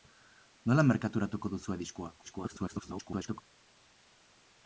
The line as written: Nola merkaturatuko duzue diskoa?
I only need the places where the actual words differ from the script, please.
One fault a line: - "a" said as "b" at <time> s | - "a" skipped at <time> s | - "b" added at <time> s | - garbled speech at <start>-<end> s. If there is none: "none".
- garbled speech at 2.2-3.4 s